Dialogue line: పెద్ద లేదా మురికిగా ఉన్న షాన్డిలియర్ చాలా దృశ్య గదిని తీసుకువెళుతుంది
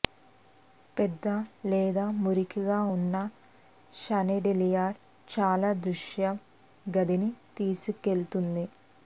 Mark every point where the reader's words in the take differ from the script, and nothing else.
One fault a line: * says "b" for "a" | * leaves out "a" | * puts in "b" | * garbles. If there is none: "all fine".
all fine